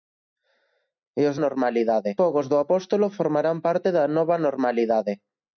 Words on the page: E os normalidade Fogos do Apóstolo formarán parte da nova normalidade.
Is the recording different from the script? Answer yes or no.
no